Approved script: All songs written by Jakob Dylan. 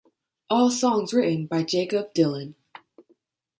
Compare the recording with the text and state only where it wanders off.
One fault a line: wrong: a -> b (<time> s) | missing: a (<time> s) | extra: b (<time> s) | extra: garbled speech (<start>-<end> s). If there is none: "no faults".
no faults